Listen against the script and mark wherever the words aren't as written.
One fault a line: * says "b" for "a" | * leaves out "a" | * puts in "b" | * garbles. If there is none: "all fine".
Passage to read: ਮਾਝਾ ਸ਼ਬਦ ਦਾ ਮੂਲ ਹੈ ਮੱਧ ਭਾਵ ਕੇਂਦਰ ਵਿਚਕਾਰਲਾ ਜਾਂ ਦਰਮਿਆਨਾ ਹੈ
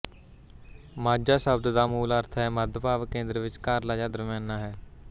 * puts in "ਅਰਥ"